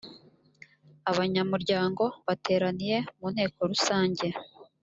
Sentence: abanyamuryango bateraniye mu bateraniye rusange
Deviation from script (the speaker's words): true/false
true